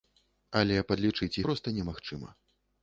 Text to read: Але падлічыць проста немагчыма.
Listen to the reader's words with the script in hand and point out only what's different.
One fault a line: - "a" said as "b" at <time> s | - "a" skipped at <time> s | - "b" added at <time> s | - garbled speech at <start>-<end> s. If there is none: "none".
none